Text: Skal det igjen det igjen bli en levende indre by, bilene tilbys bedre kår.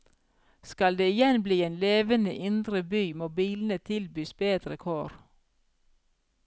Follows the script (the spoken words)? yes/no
no